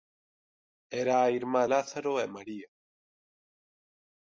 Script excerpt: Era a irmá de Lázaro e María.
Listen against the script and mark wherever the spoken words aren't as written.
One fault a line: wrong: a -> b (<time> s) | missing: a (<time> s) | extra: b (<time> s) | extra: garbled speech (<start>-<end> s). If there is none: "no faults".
missing: de (1.6 s)